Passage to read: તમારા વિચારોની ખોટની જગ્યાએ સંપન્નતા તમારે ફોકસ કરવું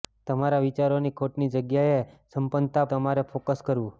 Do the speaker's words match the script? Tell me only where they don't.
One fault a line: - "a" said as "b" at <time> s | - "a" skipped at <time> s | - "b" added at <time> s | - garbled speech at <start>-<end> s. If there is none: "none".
none